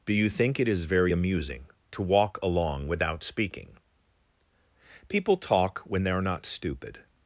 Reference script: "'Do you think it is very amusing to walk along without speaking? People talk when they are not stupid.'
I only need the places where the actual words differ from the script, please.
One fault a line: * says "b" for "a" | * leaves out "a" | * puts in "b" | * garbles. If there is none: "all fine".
all fine